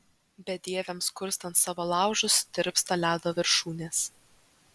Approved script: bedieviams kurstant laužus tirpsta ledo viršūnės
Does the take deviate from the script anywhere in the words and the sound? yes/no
yes